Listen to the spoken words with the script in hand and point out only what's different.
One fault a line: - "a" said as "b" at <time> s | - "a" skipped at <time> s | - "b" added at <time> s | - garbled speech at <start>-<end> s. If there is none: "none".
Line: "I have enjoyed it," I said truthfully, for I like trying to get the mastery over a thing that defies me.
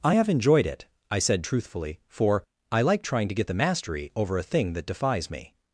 none